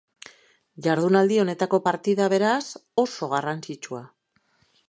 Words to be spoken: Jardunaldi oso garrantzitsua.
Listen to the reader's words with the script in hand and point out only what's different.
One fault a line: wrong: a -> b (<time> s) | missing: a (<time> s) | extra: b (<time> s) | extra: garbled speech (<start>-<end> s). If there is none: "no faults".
extra: honetako partida beraz (1.4 s)